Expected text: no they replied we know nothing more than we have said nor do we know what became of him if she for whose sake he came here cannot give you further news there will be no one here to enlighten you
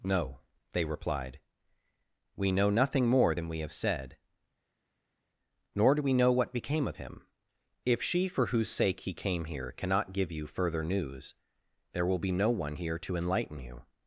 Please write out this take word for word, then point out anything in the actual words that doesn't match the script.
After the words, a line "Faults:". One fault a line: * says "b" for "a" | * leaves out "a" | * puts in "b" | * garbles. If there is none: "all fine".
no they replied we know nothing more than we have said nor do we know what became of him if she for whose sake he came here cannot give you further news there will be no one here to enlighten you
Faults:
all fine